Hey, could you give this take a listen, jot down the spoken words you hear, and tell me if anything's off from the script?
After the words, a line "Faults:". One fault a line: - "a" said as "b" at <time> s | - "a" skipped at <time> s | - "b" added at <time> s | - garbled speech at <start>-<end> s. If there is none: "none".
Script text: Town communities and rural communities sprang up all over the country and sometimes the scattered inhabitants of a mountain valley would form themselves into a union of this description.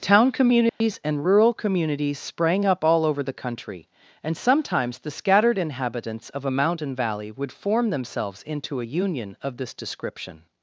Town communities and rural communities sprang up all over the country and sometimes the scattered inhabitants of a mountain valley would form themselves into a union of this description.
Faults:
none